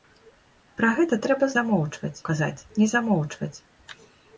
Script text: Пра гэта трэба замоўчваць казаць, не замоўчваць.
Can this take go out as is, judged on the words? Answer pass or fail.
pass